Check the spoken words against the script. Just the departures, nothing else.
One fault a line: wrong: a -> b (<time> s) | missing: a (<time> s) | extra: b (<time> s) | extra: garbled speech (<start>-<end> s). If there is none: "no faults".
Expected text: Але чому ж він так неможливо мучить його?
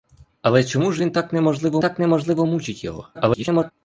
extra: так неможливо (1.8 s)
extra: garbled speech (3.1-3.7 s)